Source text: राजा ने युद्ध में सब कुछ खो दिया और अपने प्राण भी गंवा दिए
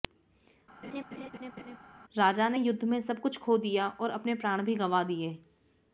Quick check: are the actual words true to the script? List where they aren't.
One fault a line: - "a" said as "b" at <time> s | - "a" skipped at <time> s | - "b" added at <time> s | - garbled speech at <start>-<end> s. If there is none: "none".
none